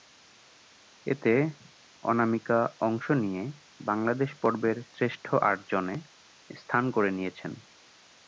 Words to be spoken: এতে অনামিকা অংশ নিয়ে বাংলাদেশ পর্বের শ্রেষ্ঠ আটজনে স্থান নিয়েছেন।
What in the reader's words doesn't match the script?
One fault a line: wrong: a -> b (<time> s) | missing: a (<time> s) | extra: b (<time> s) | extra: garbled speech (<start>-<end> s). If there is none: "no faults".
extra: করে (6.9 s)